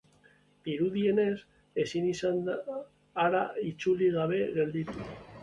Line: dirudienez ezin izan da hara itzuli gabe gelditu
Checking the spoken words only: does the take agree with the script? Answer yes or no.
yes